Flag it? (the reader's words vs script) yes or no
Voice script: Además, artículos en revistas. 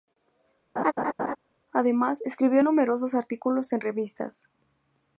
yes